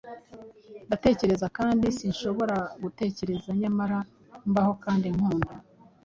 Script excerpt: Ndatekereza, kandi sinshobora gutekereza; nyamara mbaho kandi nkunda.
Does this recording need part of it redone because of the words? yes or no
no